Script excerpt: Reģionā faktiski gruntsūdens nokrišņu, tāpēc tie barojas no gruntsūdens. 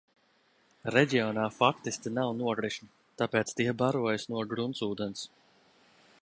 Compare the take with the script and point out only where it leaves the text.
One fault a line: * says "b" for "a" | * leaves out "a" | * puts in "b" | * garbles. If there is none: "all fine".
* says "nav" for "gruntsūdens"